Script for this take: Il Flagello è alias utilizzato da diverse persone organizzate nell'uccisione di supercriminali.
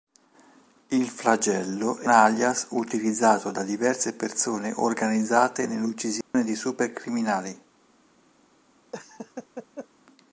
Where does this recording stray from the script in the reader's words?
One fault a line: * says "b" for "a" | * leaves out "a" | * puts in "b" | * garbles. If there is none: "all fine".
all fine